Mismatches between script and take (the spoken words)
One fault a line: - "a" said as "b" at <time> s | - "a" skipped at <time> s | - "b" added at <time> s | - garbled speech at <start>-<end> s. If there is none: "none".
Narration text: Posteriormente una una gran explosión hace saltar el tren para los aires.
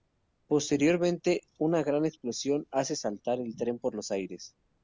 - "una" skipped at 1.8 s
- "para" said as "por" at 3.8 s